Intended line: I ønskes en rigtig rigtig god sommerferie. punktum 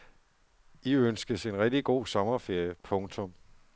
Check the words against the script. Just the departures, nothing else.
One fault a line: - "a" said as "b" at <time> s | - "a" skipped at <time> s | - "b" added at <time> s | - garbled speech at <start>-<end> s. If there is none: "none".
- "rigtig" skipped at 1.9 s